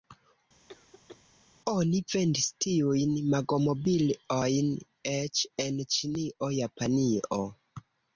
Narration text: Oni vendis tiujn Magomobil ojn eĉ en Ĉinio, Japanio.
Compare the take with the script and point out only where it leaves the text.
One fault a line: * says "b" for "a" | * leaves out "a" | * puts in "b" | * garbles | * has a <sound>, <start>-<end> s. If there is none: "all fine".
* has a cough, 0.7-1.2 s